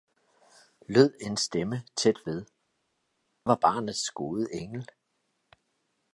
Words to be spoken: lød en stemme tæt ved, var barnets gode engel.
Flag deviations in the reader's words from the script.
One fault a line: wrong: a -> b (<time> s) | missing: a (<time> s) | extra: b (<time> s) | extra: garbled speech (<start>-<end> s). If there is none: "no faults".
no faults